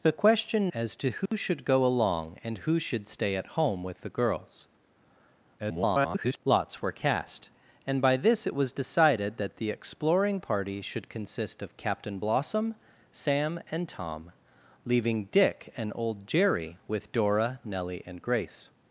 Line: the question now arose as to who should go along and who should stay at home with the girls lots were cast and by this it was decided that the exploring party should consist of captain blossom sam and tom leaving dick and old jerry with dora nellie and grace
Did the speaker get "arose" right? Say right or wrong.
wrong